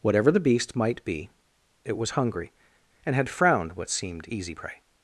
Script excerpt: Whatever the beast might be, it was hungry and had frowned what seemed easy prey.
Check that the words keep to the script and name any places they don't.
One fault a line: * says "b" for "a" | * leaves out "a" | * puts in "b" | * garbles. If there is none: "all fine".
all fine